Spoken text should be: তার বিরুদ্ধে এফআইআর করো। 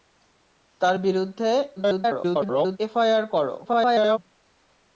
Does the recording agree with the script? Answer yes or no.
no